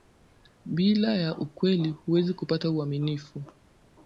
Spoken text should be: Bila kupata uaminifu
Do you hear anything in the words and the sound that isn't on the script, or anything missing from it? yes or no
yes